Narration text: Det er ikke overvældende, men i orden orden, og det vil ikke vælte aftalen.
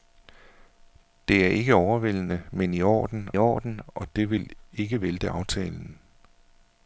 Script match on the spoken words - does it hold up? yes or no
yes